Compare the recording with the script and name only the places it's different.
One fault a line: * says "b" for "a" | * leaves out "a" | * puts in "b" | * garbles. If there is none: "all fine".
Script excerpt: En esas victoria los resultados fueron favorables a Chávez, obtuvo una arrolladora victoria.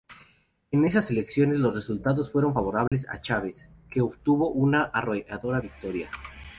* says "elecciones" for "victoria"
* puts in "que"